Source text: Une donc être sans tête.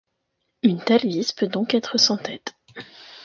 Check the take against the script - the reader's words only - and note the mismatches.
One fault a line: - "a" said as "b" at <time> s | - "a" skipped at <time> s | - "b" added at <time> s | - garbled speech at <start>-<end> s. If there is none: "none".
- "telle vis peut" added at 0.8 s